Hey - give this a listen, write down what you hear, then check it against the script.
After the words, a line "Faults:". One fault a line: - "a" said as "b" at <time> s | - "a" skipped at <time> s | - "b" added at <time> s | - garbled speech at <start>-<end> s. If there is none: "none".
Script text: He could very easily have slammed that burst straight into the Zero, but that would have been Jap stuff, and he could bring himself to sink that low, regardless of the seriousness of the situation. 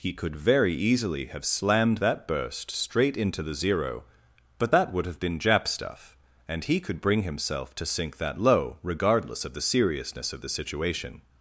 He could very easily have slammed that burst straight into the Zero, but that would have been Jap stuff, and he could bring himself to sink that low, regardless of the seriousness of the situation.
Faults:
none